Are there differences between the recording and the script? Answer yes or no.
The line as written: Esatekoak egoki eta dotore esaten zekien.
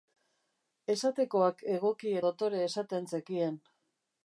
yes